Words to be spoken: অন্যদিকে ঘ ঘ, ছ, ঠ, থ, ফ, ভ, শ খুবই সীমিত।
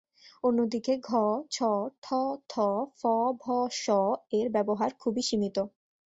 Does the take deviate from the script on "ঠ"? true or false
false